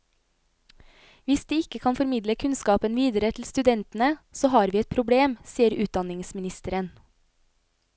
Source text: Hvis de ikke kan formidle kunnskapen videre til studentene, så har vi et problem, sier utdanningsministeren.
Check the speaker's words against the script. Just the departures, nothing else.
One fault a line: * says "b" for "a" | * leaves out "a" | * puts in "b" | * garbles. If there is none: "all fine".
all fine